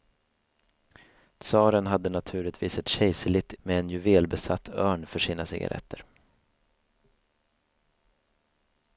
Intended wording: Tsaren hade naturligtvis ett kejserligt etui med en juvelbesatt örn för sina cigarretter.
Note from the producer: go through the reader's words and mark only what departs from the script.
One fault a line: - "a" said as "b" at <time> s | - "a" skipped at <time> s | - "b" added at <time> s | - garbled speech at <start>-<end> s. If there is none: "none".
- "etui" skipped at 3.5 s